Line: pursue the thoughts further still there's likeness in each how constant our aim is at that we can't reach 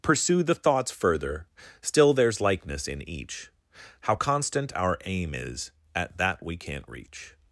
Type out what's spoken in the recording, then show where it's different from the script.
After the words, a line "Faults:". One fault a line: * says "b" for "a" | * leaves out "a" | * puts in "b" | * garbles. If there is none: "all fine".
pursue the thoughts further still there's likeness in each how constant our aim is at that we can't reach
Faults:
all fine